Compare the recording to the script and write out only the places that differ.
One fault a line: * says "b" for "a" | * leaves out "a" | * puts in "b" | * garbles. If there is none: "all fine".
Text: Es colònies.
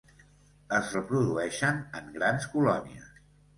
* puts in "reprodueixen en grans"